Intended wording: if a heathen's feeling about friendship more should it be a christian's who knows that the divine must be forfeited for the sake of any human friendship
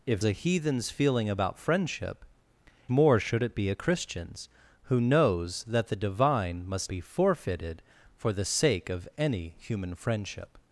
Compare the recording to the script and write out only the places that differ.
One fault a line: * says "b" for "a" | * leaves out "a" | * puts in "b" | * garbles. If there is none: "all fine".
all fine